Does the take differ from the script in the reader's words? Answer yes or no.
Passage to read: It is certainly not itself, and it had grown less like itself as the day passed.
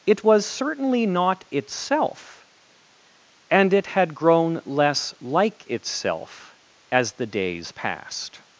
yes